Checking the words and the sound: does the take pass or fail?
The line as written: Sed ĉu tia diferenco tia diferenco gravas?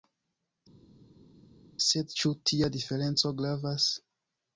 fail